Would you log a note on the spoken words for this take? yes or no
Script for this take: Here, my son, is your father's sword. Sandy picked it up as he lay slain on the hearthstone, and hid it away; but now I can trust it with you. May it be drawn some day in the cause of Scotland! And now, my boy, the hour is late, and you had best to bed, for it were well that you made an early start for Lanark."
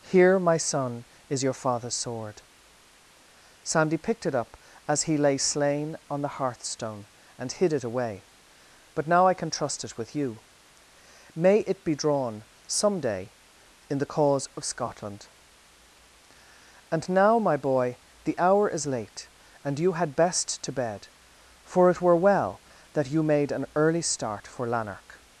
no